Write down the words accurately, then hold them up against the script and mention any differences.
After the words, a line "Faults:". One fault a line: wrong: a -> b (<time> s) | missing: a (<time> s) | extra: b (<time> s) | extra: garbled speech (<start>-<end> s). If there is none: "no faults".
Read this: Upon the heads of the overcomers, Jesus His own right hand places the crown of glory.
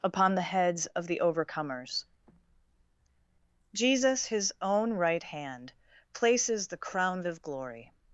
Upon the heads of the overcomers, Jesus His own right hand places the crown of glory.
Faults:
no faults